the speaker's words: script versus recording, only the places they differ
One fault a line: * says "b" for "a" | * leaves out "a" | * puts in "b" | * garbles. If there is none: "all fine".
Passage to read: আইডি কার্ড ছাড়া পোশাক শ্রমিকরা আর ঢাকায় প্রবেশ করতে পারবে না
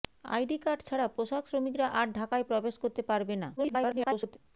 * garbles